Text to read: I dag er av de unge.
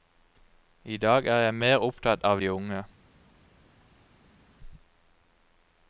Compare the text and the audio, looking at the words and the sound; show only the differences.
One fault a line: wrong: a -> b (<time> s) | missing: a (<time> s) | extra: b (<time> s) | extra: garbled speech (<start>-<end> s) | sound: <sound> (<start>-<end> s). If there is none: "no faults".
extra: jeg mer opptatt (1.4 s)